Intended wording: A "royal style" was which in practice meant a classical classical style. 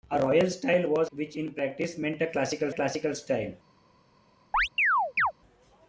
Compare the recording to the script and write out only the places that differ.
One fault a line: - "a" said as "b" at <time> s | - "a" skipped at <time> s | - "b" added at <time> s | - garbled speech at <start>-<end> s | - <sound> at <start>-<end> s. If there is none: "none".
- chirp at 4.5-5.3 s